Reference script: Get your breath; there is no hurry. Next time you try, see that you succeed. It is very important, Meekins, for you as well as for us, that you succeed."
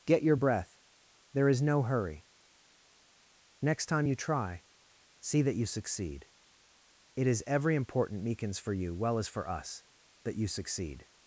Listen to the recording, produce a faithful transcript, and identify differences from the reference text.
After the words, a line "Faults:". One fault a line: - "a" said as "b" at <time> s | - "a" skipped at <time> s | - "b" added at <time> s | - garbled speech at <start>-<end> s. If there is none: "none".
Get your breath; there is no hurry. Next time you try, see that you succeed. It is every important, Meekins, for you well as for us, that you succeed."
Faults:
- "very" said as "every" at 7.5 s
- "as" skipped at 8.9 s